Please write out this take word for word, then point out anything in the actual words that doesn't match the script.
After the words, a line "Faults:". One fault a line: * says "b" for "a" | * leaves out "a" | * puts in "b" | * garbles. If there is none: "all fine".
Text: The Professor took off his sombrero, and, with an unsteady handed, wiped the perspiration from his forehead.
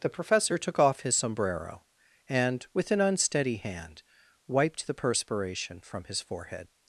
The Professor took off his sombrero, and, with an unsteady hand, wiped the perspiration from his forehead.
Faults:
* says "hand" for "handed"